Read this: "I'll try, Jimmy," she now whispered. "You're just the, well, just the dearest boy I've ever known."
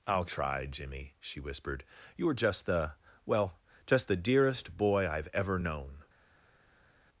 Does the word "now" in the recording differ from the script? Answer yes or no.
yes